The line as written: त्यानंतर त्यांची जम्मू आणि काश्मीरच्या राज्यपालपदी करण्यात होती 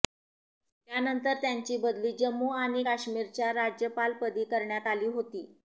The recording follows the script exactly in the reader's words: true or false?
false